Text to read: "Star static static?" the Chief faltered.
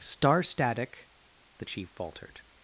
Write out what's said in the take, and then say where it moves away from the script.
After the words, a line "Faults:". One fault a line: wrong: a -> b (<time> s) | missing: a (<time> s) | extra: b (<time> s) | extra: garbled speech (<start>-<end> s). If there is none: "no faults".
"Star static?" the Chief faltered.
Faults:
missing: static (1.1 s)